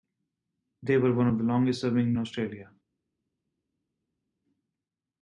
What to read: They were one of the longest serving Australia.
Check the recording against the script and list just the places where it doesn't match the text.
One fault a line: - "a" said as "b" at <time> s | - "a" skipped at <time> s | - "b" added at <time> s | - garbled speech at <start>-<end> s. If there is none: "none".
none